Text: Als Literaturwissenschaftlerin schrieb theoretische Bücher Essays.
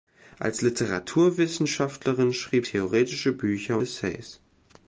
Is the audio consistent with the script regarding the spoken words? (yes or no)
yes